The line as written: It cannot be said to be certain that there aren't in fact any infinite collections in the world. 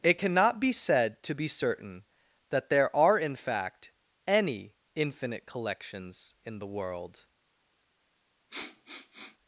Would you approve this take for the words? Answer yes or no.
no